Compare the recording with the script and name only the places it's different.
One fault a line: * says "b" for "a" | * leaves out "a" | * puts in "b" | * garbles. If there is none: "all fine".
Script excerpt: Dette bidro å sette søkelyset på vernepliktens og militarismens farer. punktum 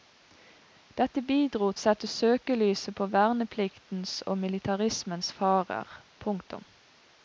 all fine